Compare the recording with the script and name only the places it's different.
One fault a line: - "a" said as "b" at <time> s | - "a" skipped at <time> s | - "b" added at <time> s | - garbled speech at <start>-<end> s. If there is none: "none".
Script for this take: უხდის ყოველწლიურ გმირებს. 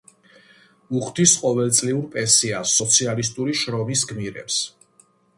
- "პენსიას სოციალისტური შრომის" added at 2.1 s